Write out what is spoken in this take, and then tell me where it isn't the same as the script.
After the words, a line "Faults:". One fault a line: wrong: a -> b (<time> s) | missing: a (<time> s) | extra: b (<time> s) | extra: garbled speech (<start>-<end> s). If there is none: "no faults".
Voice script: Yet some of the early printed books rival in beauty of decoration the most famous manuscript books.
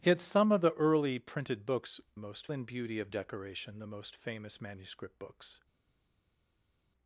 Yet some of the early printed books most in beauty of decoration the most famous manuscript books.
Faults:
wrong: rival -> most (2.2 s)